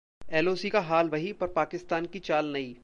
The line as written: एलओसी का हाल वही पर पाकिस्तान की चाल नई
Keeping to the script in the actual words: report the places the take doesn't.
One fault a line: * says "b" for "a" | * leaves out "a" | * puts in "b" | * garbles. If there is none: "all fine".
all fine